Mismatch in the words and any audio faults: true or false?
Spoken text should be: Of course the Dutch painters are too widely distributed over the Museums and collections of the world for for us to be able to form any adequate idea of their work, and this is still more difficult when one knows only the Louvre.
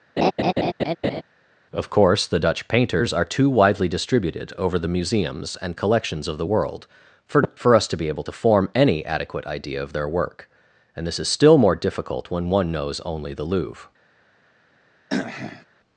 true